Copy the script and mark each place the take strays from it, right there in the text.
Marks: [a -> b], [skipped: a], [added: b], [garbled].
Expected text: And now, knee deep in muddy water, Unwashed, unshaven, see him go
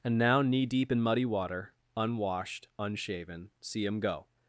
And now, knee deep in muddy water, Unwashed, unshaven, see him go